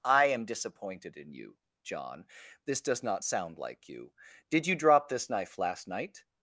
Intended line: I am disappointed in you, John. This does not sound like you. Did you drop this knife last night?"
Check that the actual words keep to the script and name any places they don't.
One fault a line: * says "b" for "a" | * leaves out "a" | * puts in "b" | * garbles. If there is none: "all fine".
all fine